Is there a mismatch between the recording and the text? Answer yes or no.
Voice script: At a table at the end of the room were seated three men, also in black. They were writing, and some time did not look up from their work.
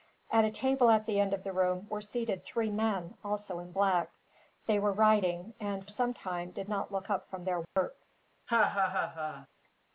no